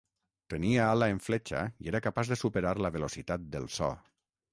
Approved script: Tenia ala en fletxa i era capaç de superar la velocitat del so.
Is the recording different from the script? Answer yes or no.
no